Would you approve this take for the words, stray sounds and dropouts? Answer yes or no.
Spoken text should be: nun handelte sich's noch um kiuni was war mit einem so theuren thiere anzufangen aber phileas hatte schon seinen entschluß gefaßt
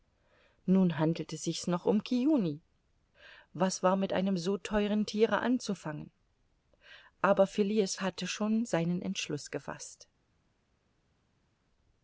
yes